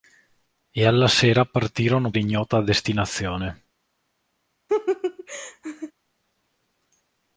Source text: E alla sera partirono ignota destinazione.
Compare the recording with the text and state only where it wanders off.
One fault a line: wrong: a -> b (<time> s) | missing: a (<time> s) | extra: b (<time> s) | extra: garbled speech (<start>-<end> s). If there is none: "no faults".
no faults